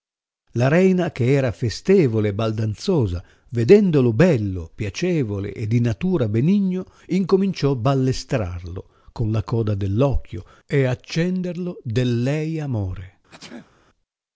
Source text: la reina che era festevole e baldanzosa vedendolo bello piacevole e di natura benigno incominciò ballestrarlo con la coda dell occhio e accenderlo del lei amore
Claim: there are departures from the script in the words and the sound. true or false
true